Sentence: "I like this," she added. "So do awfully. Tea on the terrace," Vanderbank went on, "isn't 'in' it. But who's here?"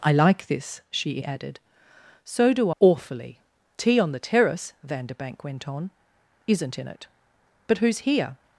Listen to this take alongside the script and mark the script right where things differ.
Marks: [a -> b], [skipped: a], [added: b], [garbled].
"I like this," she added. "So do awfully. Tea on the terrace," Vanderbank went on, "isn't 'in' it. But who's here?"